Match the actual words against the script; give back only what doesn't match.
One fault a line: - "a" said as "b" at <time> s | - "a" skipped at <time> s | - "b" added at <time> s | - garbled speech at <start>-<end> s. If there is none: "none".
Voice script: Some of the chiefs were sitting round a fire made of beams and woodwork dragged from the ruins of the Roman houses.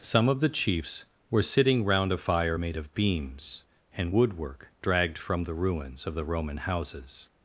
none